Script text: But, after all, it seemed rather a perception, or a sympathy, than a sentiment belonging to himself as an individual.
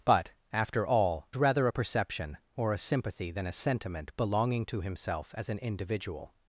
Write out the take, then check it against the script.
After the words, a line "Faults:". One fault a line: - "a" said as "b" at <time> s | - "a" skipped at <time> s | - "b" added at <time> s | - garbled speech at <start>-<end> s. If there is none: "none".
But, after all, rather a perception, or a sympathy, than a sentiment belonging to himself as an individual.
Faults:
- "it seemed" skipped at 1.3 s